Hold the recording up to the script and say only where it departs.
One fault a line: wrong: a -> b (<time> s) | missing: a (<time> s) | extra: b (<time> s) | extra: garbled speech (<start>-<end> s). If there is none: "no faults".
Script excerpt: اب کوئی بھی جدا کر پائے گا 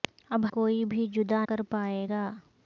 no faults